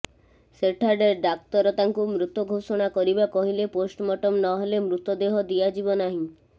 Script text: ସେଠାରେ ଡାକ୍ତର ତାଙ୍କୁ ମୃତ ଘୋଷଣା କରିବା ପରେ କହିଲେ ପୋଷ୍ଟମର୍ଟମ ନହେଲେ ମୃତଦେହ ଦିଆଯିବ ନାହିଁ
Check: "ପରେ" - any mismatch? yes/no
yes